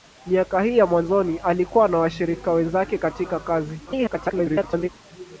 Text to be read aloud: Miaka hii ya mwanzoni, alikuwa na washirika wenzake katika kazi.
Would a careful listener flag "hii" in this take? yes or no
no